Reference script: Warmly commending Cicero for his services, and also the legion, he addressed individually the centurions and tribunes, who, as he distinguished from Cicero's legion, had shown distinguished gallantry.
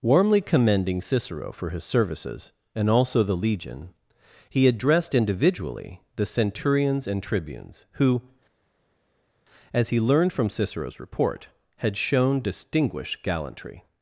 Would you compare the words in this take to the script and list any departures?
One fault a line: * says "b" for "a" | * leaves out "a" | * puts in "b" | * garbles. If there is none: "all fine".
* says "learned" for "distinguished"
* says "report" for "legion"